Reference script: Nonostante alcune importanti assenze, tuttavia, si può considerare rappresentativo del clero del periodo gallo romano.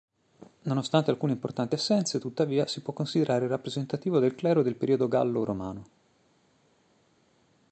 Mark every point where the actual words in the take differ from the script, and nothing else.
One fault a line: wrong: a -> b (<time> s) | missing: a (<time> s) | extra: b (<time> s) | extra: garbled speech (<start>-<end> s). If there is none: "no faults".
no faults